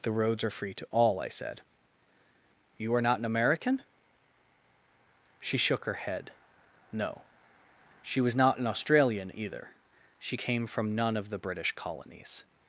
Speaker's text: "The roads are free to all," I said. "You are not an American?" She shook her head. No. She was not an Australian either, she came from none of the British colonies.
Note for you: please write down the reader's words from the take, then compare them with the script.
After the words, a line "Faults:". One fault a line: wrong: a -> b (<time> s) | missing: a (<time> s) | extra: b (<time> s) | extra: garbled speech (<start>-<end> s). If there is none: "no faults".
"The roads are free to all," I said. "You are not an American?" She shook her head. No. She was not an Australian either, she came from none of the British colonies.
Faults:
no faults